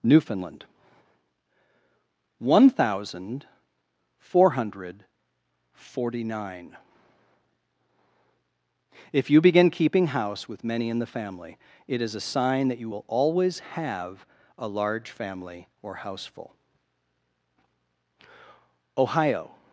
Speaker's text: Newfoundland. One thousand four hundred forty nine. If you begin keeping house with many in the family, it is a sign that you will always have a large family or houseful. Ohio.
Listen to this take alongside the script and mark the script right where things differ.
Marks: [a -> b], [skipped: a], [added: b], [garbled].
Newfoundland. One thousand four hundred forty nine. If you begin keeping house with many in the family, it is a sign that you will always have a large family or houseful. Ohio.